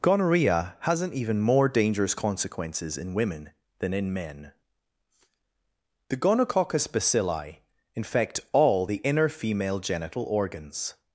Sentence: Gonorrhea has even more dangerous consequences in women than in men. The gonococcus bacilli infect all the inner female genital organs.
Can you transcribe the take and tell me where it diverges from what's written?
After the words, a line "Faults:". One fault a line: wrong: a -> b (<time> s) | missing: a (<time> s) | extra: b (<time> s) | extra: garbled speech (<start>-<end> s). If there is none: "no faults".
Gonorrhea hasn't even more dangerous consequences in women than in men. The gonococcus bacilli infect all the inner female genital organs.
Faults:
wrong: has -> hasn't (0.8 s)